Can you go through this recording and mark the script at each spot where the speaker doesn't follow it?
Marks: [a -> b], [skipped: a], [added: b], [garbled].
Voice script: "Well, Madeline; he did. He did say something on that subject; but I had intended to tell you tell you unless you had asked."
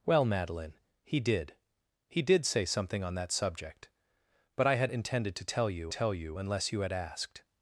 "Well, Madeline; he did. He did say something on that subject; but I had intended to tell you tell you unless you had asked."